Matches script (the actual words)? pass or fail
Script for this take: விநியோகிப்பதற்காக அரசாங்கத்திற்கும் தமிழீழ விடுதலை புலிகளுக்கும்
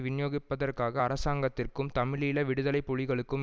pass